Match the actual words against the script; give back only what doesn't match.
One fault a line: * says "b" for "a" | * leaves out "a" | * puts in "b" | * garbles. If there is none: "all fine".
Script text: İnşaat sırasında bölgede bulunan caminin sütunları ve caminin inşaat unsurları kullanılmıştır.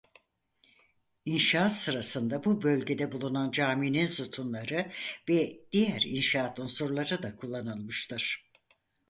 * puts in "bu"
* says "diğer" for "caminin"
* puts in "da"